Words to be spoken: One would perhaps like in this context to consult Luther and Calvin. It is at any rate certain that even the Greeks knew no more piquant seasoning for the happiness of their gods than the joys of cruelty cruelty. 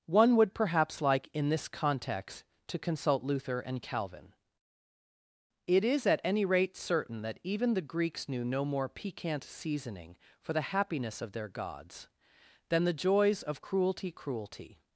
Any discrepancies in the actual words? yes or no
no